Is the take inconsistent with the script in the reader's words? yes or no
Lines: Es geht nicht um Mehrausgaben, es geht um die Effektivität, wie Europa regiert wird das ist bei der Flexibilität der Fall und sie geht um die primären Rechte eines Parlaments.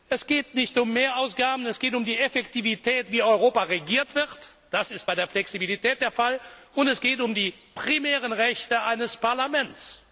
yes